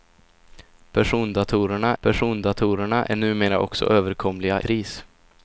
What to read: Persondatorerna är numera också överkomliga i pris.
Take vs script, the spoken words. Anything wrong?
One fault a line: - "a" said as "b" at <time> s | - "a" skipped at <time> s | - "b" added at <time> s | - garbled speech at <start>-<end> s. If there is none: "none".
- "persondatorerna" added at 2.0 s
- "i" skipped at 4.6 s